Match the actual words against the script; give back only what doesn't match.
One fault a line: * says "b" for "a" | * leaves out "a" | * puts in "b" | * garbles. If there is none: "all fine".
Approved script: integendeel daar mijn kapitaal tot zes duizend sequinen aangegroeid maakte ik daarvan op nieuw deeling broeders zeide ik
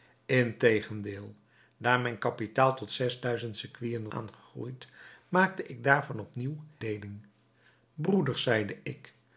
all fine